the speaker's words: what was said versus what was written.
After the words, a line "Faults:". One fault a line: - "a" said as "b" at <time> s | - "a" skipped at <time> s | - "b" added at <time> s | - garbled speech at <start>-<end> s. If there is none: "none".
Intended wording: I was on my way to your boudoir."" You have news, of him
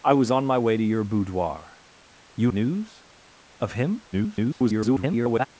I was on my way to your boudoir."" You news, of him [garbled]
Faults:
- "have" skipped at 2.5 s
- garbled speech at 4.1-5.5 s